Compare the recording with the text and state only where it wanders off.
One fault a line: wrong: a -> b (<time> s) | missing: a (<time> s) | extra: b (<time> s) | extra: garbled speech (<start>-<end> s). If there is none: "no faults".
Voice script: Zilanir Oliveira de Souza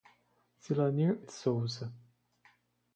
missing: Oliveira (1.2 s)